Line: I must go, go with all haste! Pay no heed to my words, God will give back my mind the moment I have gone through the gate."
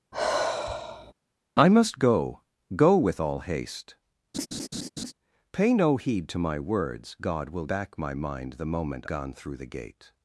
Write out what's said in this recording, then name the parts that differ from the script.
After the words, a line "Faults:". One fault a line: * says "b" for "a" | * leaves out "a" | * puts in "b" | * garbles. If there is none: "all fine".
I must go, go with all haste! Pay no heed to my words, God will back my mind the moment gone through the gate."
Faults:
* leaves out "give"
* leaves out "I have"